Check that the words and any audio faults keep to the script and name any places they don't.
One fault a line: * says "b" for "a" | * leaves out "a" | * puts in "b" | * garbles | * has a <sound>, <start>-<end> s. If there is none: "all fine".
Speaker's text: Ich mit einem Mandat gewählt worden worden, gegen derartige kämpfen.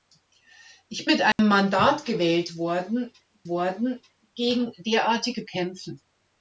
* has a dropout, 1.3-1.4 s